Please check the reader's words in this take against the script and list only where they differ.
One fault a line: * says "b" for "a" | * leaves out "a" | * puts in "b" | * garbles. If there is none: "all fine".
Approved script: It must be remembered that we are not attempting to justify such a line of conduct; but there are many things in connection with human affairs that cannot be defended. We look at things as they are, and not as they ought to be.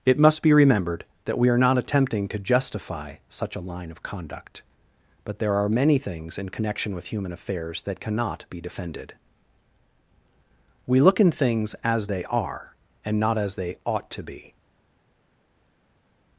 * says "in" for "at"